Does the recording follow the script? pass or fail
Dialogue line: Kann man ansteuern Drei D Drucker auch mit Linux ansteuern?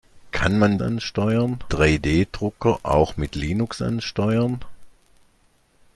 pass